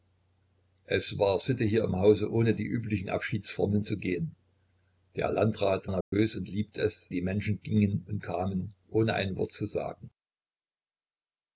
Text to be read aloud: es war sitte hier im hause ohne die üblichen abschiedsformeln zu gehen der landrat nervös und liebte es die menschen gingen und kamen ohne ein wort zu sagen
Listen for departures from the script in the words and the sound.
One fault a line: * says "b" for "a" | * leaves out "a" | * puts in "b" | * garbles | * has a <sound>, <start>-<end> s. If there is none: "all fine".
* has a dropout, 6.0-6.1 s